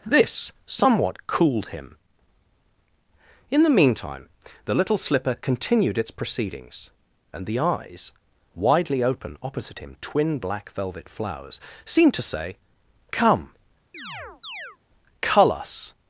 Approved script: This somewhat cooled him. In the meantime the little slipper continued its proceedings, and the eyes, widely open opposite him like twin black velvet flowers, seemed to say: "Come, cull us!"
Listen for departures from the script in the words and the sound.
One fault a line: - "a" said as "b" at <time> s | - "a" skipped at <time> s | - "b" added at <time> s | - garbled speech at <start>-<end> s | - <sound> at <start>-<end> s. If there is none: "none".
- "like" skipped at 10.0 s
- chirp at 13.9-14.8 s